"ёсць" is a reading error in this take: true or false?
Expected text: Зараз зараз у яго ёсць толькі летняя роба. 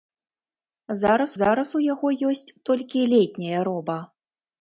false